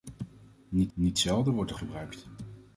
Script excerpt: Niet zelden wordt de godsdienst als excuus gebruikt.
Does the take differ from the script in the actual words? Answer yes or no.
yes